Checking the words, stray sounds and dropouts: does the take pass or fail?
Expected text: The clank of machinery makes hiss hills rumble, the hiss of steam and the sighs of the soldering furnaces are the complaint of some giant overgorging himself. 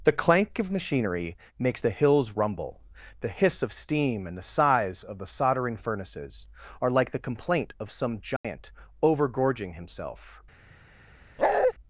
fail